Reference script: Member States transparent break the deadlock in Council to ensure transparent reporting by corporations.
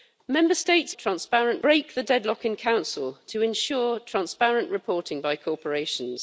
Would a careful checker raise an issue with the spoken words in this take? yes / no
no